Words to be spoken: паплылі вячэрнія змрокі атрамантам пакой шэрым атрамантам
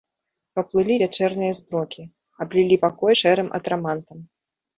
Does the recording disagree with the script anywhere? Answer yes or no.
yes